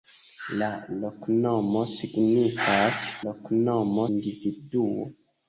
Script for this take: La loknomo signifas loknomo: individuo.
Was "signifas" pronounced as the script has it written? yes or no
yes